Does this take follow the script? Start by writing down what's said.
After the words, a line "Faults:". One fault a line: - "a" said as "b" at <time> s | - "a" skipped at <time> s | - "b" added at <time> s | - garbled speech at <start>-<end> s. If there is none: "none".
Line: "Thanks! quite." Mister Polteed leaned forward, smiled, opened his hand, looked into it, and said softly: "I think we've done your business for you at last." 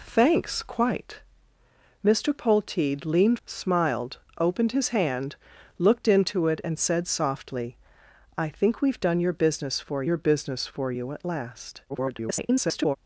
"Thanks! quite." Mister Polteed leaned smiled, opened his hand, looked into it, and said softly: "I think we've done your business for your business for you at last." [garbled]
Faults:
- "forward" skipped at 3.4 s
- "your business for" added at 10.0 s
- garbled speech at 11.9-13.0 s